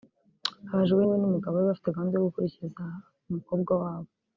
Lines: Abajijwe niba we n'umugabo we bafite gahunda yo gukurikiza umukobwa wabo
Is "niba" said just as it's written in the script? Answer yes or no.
no